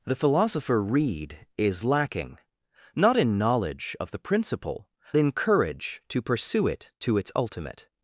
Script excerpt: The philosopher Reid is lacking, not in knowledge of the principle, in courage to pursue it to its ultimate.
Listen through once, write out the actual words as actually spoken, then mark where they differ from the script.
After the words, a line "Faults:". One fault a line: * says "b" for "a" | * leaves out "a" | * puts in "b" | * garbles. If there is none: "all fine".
The philosopher Reid is lacking, not in knowledge of the principle, in courage to pursue it to its ultimate.
Faults:
all fine